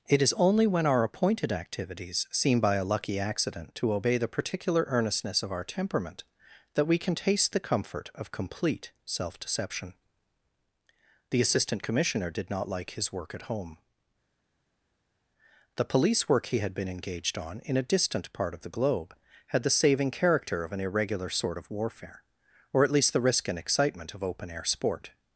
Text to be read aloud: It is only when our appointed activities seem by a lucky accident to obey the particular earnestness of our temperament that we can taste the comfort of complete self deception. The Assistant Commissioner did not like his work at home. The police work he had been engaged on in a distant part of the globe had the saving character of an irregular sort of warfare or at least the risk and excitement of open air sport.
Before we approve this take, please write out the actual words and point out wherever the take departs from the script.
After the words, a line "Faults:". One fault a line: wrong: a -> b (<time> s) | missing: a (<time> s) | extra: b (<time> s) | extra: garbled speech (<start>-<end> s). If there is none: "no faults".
It is only when our appointed activities seem by a lucky accident to obey the particular earnestness of our temperament that we can taste the comfort of complete self deception. The Assistant Commissioner did not like his work at home. The police work he had been engaged on in a distant part of the globe had the saving character of an irregular sort of warfare or at least the risk and excitement of open air sport.
Faults:
no faults